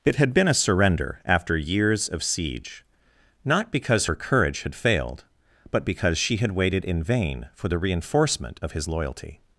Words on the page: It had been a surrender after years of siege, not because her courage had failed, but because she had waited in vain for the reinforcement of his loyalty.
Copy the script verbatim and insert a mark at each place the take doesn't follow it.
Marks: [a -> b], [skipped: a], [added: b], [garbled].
It had been a surrender after years of siege, not because her courage had failed, but because she had waited in vain for the reinforcement of his loyalty.